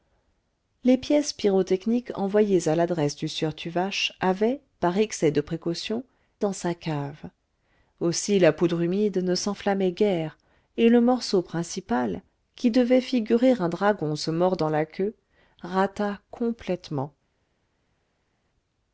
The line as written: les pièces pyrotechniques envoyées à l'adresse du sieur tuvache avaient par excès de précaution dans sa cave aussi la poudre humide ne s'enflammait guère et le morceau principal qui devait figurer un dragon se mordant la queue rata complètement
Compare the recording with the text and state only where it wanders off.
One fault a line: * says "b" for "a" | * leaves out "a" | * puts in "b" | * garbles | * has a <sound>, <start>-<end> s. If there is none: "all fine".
all fine